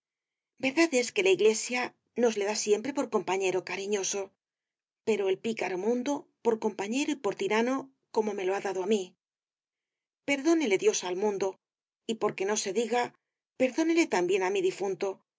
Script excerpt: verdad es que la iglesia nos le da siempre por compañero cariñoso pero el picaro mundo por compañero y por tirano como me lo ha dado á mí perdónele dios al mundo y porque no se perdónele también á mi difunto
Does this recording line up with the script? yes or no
no